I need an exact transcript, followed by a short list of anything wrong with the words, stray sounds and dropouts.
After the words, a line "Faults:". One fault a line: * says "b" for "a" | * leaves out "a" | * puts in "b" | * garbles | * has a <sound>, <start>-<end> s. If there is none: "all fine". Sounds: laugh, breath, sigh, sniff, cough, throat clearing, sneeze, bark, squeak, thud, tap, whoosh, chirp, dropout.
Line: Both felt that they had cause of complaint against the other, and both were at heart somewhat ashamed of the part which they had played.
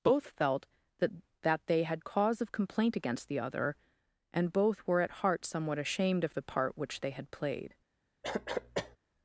Both felt that that they had cause of complaint against the other, and both were at heart somewhat ashamed of the part which they had played.
Faults:
* puts in "that"
* has a cough, 8.2-9.0 s